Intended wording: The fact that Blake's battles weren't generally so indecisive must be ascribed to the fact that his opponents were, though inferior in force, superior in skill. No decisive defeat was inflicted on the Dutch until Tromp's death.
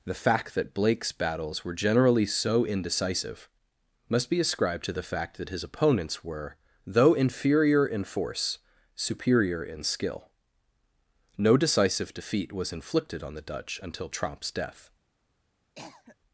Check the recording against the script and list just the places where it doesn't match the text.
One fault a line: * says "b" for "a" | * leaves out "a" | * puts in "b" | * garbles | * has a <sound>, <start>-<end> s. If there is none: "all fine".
* says "were" for "weren't"
* has a cough, 15.7-16.2 s